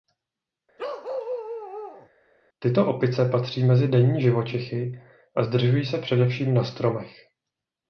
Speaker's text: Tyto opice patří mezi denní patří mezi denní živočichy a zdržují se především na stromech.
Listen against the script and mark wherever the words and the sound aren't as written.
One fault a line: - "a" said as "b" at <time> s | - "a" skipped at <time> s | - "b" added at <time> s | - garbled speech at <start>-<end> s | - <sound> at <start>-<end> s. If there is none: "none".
- bark at 0.8-2.1 s
- "patří mezi denní" skipped at 4.2 s